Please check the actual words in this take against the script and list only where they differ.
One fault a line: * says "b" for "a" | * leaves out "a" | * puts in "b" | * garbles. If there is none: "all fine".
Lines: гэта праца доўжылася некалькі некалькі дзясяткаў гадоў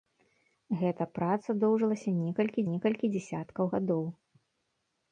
all fine